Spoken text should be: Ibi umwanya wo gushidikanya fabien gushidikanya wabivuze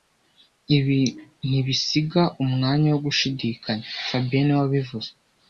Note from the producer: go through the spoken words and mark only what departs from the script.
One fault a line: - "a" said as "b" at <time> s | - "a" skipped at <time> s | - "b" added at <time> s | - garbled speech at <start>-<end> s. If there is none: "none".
- "ntibisiga" added at 1.5 s
- "gushidikanya" said as "niwe" at 4.5 s